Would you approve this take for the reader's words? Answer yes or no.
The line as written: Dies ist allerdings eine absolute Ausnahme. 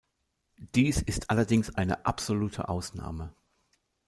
yes